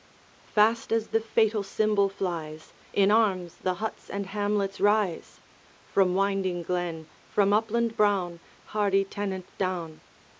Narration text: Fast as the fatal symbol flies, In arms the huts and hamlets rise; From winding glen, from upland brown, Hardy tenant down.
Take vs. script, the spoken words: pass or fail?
pass